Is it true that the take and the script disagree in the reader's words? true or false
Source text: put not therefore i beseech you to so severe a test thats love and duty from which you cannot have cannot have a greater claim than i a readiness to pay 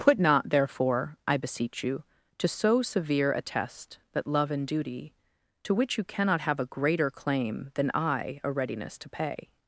true